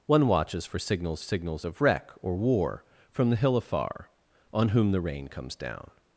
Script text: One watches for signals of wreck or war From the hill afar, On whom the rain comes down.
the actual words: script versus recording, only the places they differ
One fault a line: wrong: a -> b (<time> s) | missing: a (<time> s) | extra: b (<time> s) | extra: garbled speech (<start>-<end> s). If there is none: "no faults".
extra: signals (1.2 s)